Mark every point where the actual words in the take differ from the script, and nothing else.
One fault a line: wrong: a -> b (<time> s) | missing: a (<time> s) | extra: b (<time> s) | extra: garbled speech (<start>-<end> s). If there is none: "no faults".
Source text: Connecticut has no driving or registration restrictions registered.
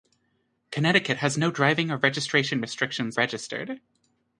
no faults